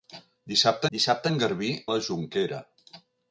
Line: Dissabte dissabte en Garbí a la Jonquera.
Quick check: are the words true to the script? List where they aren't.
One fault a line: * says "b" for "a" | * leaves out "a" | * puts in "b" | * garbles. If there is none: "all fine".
all fine